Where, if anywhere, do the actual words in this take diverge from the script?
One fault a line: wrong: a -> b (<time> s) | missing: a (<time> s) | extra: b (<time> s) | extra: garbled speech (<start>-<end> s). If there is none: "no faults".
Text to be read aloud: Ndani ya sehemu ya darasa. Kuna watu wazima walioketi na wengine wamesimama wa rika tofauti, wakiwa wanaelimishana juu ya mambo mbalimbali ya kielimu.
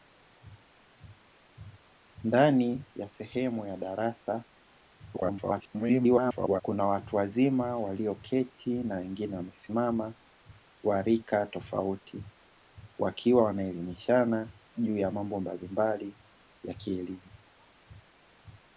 extra: garbled speech (5.1-6.6 s)